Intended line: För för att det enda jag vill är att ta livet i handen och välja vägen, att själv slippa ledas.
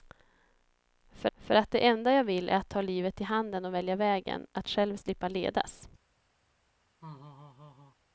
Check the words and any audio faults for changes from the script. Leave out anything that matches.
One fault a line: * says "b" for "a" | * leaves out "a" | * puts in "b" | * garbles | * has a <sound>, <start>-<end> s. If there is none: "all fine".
* has a laugh, 7.0-8.0 s